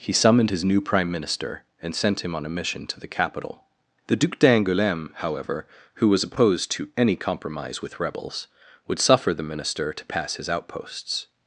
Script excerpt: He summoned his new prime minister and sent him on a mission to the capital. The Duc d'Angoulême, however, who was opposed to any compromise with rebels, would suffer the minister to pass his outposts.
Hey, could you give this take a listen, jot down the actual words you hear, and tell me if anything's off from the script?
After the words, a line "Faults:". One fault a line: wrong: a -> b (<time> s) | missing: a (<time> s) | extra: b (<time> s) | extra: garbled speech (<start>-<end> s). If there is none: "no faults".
He summoned his new prime minister and sent him on a mission to the capital. The Duc d'Angoulême, however, who was opposed to any compromise with rebels, would suffer the minister to pass his outposts.
Faults:
no faults